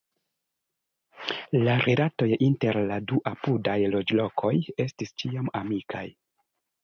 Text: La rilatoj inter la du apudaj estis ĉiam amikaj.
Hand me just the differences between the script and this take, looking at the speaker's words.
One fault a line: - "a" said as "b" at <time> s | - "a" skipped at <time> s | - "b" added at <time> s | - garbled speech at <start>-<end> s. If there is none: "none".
- "loĝlokoj" added at 4.0 s